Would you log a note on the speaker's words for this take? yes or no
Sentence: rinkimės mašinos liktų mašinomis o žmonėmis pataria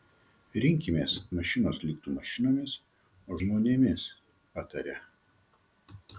no